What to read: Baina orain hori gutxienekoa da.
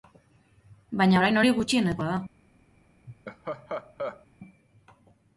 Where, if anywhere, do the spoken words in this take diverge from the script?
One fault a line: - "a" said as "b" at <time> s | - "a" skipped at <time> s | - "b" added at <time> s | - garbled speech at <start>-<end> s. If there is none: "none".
none